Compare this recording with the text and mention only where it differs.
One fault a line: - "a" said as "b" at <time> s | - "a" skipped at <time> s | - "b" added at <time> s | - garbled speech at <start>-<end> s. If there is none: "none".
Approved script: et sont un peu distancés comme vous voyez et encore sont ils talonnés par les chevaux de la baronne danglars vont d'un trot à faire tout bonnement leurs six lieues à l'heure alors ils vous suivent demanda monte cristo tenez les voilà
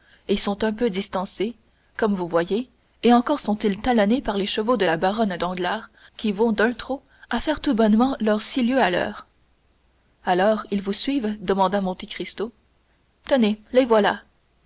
- "qui" added at 6.1 s